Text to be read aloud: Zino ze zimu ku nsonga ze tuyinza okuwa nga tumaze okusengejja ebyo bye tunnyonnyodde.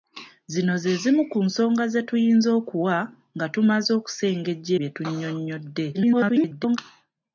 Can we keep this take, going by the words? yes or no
no